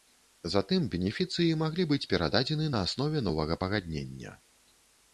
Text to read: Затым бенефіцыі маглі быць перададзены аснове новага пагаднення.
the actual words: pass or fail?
fail